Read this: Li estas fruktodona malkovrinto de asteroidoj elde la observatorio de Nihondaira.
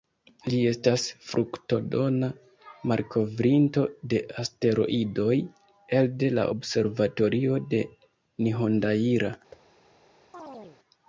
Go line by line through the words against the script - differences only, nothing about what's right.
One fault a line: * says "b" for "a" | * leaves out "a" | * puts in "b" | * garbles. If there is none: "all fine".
all fine